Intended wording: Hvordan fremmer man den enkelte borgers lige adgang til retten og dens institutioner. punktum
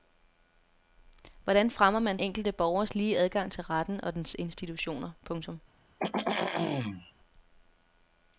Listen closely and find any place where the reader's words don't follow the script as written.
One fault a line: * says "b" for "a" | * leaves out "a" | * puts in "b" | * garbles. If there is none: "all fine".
* leaves out "den"